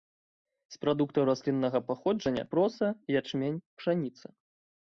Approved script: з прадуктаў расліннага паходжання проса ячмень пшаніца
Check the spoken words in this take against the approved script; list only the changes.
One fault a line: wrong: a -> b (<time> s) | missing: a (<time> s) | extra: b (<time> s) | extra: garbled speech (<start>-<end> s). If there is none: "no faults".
no faults